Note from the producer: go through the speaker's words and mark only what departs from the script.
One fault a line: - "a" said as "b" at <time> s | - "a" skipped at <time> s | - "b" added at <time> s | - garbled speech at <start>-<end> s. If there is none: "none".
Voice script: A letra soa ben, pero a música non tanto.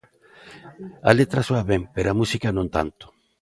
none